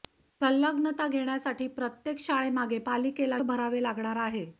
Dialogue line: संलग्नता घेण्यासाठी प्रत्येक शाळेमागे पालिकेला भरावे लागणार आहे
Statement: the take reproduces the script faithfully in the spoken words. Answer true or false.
true